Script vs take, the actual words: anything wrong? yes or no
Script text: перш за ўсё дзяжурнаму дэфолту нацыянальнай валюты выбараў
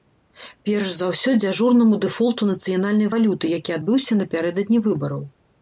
yes